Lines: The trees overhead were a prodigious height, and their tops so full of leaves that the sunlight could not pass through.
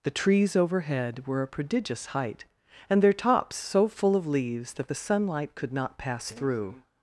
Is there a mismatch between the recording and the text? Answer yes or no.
no